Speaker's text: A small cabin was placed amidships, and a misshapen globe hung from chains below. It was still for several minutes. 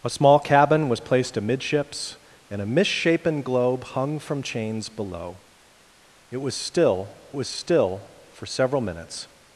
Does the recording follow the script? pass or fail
fail